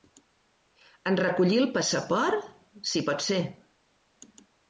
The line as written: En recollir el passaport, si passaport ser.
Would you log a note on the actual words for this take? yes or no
yes